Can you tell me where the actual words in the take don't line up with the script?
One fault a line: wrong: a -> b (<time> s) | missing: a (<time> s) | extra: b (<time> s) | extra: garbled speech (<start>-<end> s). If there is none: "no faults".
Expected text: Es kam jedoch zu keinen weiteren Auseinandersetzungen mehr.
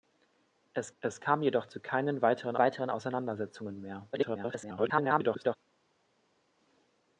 extra: es (1.0 s)
extra: weiteren (2.6 s)
extra: garbled speech (4.1-5.6 s)